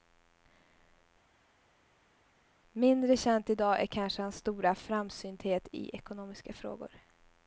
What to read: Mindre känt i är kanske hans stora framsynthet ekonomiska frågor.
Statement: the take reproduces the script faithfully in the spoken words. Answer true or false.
false